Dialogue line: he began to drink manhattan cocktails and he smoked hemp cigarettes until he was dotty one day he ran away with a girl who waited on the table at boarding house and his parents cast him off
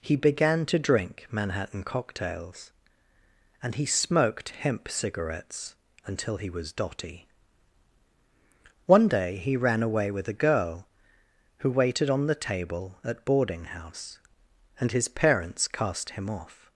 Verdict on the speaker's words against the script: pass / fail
pass